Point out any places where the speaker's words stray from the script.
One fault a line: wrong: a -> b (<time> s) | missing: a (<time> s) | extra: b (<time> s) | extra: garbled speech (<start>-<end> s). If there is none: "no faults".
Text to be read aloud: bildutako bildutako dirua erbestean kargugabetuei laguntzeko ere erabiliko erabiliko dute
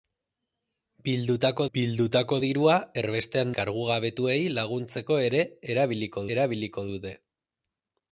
no faults